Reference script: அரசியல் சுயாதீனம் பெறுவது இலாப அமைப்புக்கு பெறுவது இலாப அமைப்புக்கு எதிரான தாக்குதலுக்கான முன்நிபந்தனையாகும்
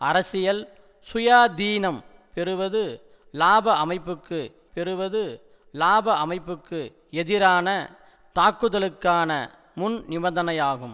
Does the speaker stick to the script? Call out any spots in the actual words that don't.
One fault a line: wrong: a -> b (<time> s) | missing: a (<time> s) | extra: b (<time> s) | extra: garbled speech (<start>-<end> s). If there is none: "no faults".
no faults